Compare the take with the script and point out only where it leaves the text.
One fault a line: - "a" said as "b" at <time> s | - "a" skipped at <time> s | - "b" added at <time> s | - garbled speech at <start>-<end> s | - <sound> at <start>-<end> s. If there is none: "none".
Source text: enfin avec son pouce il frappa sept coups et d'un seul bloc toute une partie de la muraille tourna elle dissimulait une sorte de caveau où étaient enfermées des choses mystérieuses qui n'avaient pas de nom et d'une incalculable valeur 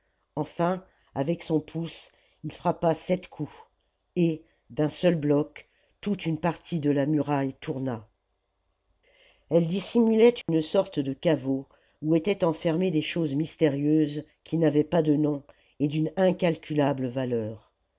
- dropout at 10.4-10.5 s